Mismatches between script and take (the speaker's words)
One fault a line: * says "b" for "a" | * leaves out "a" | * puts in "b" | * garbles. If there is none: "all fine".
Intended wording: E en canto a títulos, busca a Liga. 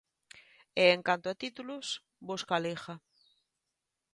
all fine